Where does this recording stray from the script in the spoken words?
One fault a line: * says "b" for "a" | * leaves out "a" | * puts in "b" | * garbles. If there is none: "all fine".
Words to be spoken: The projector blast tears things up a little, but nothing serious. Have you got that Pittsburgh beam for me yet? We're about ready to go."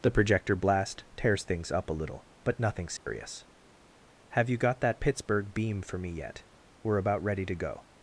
all fine